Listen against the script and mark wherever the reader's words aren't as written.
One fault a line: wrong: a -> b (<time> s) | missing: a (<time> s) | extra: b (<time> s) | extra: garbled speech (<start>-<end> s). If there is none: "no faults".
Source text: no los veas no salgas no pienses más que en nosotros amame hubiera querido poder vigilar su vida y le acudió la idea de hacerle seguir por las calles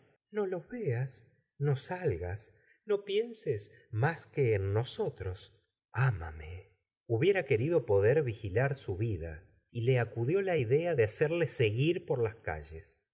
no faults